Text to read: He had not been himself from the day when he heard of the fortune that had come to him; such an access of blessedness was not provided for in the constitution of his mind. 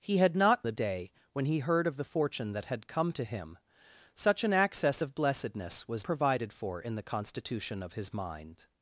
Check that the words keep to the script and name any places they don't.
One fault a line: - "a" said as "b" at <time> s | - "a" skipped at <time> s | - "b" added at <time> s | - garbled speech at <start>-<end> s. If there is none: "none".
- "been himself from" skipped at 0.7 s
- "not" skipped at 6.1 s